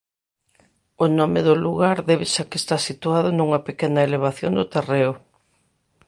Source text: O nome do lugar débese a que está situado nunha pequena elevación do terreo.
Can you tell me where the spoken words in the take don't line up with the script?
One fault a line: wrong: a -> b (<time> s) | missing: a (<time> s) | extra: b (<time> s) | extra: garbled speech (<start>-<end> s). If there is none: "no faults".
no faults